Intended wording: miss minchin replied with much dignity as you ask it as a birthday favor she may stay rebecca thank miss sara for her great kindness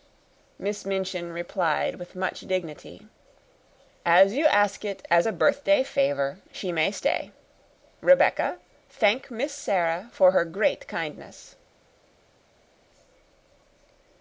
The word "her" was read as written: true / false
true